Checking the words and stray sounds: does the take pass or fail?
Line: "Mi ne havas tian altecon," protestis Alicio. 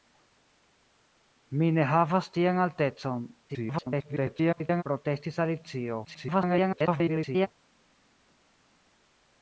fail